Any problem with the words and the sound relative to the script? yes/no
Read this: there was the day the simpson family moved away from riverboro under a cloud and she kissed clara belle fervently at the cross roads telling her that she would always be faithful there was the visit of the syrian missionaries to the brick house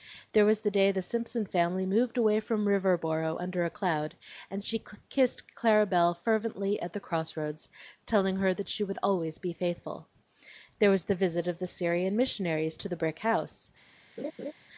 yes